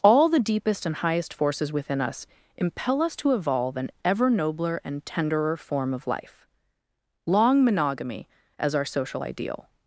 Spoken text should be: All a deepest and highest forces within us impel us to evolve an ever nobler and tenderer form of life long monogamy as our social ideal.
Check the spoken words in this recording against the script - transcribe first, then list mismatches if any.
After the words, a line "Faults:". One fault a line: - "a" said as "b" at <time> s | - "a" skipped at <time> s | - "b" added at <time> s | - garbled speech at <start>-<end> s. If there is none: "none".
All the deepest and highest forces within us impel us to evolve an ever nobler and tenderer form of life long monogamy as our social ideal.
Faults:
- "a" said as "the" at 0.3 s